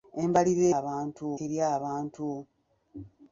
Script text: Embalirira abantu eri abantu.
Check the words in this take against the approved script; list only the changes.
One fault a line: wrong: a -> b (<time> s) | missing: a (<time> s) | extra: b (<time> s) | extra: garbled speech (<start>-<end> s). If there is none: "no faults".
no faults